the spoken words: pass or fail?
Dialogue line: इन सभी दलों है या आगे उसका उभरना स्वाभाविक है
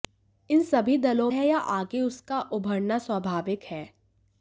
pass